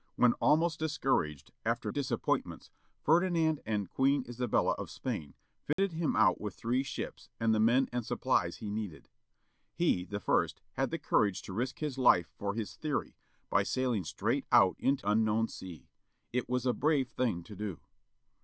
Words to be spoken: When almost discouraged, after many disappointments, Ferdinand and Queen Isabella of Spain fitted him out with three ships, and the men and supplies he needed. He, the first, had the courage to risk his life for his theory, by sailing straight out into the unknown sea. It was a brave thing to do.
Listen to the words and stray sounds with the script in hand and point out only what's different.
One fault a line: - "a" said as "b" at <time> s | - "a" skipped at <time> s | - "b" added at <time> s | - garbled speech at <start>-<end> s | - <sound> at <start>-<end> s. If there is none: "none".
- "many" skipped at 1.9 s
- dropout at 5.7-5.8 s
- "the" skipped at 15.0 s